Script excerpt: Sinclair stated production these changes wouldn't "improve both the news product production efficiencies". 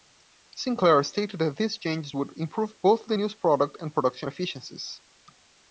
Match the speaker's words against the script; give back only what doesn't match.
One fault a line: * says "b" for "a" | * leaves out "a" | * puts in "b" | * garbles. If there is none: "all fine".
* says "that" for "production"
* says "would" for "wouldn't"
* puts in "and"